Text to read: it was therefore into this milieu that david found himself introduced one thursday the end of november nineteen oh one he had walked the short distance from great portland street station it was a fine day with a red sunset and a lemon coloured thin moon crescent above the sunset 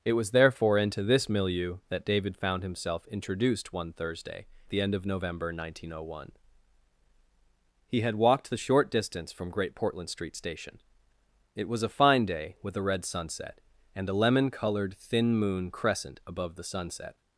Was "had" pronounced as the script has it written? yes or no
yes